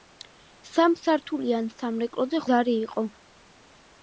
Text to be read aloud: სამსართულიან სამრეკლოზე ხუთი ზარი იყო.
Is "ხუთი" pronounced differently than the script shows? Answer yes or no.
yes